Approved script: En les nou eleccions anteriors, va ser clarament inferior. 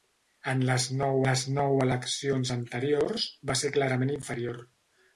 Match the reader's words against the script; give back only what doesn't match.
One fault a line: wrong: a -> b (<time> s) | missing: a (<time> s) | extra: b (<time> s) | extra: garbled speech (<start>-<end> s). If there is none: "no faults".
extra: les nou (1.2 s)